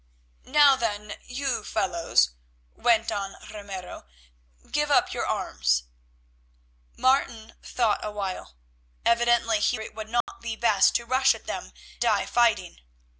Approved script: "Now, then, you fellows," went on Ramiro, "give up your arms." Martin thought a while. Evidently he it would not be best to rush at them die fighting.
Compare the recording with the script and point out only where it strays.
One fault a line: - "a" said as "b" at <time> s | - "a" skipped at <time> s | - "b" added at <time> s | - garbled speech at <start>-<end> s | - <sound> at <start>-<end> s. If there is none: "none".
- dropout at 10.2-10.3 s